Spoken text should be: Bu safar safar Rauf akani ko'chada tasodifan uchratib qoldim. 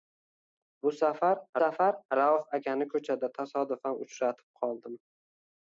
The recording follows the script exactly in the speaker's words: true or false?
true